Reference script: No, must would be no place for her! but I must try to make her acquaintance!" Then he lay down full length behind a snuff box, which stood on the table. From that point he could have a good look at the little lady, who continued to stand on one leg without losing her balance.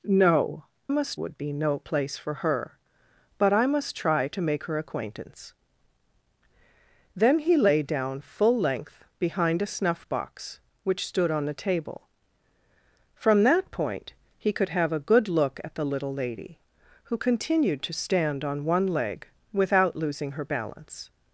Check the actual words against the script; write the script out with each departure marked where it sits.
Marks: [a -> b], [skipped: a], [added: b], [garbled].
No, must would be no place for her! but I must try to make her acquaintance!" Then he lay down full length behind a snuff box, which stood on the table. From that point he could have a good look at the little lady, who continued to stand on one leg without losing her balance.